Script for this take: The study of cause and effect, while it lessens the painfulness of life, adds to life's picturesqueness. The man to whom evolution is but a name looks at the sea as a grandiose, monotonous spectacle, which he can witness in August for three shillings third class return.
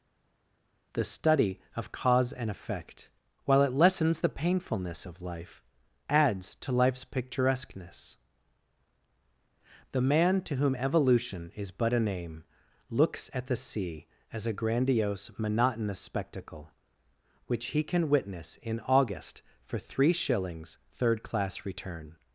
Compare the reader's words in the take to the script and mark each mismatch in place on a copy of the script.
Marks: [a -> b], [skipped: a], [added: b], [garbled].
The study of cause and effect, while it lessens the painfulness of life, adds to life's picturesqueness. The man to whom evolution is but a name looks at the sea as a grandiose, monotonous spectacle, which he can witness in August for three shillings third class return.